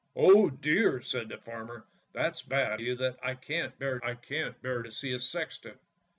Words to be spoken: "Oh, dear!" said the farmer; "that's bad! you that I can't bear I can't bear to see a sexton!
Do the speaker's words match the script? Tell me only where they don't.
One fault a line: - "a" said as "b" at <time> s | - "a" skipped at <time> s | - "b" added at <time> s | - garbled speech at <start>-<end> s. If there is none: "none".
none